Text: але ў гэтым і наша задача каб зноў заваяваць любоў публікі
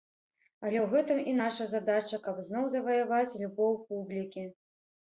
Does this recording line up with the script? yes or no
yes